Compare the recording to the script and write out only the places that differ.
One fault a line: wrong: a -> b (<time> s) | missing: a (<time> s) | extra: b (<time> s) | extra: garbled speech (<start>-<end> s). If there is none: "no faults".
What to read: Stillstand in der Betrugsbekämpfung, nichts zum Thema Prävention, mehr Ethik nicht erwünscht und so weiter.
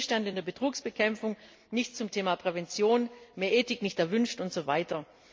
no faults